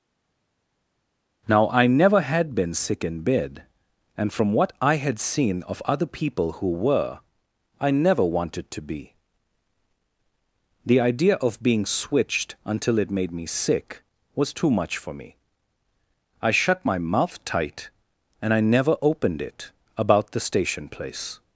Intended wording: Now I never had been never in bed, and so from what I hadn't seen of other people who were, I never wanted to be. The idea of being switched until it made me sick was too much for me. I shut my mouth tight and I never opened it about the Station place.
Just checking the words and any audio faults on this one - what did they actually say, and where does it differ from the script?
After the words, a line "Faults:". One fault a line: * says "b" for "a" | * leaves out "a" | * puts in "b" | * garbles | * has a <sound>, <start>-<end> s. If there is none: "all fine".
Now I never had been sick in bed, and from what I had seen of other people who were, I never wanted to be. The idea of being switched until it made me sick was too much for me. I shut my mouth tight and I never opened it about the Station place.
Faults:
* says "sick" for "never"
* leaves out "so"
* says "had" for "hadn't"